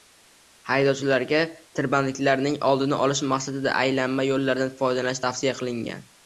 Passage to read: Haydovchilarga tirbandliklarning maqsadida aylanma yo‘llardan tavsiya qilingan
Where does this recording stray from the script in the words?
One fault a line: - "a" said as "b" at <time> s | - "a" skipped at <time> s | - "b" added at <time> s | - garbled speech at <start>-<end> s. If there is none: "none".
- "oldini olish" added at 2.7 s
- "foydalanish" added at 4.8 s